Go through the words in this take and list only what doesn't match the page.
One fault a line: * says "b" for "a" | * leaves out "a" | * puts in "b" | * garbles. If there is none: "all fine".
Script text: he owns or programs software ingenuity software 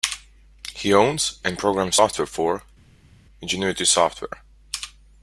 * says "and" for "or"
* puts in "for"